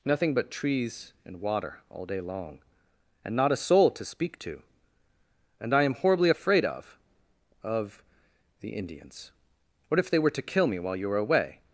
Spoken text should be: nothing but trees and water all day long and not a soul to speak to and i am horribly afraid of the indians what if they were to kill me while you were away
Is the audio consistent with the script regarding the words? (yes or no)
no